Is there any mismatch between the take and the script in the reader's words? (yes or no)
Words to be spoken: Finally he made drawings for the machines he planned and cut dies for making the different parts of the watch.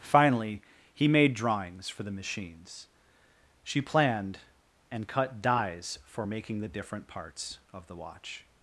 yes